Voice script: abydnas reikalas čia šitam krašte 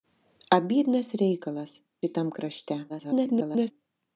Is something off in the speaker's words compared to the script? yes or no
yes